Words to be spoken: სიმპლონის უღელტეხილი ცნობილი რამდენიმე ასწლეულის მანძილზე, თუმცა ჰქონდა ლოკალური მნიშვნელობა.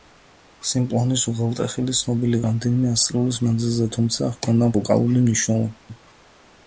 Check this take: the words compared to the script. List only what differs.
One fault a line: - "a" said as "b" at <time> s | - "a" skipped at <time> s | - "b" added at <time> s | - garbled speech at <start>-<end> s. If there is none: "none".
none